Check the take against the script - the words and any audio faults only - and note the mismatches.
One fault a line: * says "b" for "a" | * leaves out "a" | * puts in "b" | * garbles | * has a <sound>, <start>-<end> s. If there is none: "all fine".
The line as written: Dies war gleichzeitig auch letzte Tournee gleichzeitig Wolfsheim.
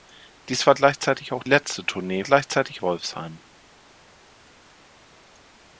all fine